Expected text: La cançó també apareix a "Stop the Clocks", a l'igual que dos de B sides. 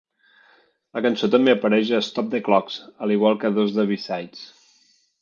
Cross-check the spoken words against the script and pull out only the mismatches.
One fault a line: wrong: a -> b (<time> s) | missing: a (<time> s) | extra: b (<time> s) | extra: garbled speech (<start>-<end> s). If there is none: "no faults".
no faults